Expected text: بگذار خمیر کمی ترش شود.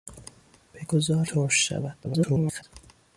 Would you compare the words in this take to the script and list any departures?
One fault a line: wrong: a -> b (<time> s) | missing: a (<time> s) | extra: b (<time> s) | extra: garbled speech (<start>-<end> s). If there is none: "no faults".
missing: خمیر کمی (1.2 s)
extra: garbled speech (2.0-2.6 s)